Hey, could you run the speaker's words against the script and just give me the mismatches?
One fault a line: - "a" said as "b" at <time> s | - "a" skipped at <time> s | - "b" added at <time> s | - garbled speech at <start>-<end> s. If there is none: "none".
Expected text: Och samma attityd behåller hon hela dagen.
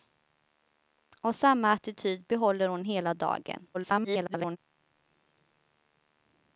- garbled speech at 3.7-4.6 s